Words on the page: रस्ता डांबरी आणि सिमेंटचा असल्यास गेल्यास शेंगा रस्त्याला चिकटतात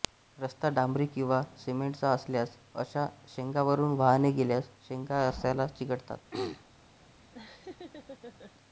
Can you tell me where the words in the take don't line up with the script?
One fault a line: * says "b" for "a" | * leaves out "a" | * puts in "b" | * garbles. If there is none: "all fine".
* says "किंवा" for "आणि"
* puts in "अशा शेंगांवरून वाहने"